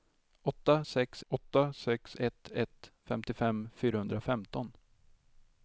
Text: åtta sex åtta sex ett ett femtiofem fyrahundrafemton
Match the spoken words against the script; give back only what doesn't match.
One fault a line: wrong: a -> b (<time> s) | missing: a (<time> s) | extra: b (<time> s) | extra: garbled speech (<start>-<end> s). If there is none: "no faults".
no faults